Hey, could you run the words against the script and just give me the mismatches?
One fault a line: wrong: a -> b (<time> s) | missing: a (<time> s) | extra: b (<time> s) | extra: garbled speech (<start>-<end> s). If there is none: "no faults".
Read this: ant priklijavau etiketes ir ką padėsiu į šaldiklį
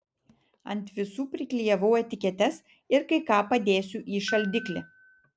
extra: visų (0.9 s)
extra: kai (3.1 s)